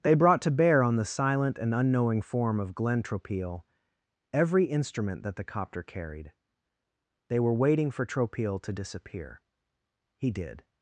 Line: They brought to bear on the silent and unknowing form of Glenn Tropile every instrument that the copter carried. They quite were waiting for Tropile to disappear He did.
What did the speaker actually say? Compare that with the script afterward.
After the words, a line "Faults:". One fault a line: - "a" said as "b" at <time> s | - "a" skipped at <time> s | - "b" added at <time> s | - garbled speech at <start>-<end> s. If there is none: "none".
They brought to bear on the silent and unknowing form of Glenn Tropile every instrument that the copter carried. They were waiting for Tropile to disappear He did.
Faults:
- "quite" skipped at 7.4 s